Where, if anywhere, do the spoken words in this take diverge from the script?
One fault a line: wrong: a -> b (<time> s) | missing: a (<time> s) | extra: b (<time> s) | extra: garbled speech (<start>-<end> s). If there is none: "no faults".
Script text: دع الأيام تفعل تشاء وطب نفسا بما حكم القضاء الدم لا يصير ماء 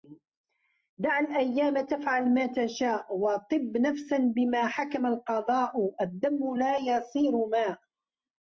extra: ما (2.3 s)